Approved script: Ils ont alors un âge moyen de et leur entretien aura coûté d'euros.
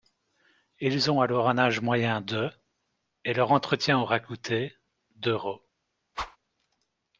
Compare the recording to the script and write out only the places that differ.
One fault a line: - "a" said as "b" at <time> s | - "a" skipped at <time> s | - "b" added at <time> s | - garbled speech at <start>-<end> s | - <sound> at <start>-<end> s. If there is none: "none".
- whoosh at 6.1-6.4 s